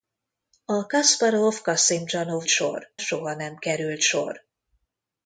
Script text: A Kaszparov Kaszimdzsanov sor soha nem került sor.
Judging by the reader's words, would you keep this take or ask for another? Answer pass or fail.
pass